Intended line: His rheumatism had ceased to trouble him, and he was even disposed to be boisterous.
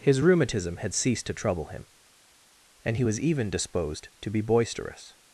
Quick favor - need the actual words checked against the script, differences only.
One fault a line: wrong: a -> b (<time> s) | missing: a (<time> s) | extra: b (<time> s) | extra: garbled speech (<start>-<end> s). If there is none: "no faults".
no faults